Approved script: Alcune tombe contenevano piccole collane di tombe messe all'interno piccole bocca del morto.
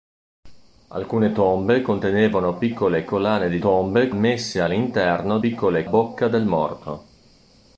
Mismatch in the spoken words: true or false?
false